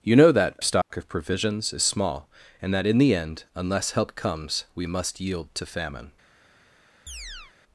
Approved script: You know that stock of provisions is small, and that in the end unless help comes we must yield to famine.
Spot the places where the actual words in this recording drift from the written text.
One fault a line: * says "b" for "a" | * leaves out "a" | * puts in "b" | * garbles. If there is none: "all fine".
all fine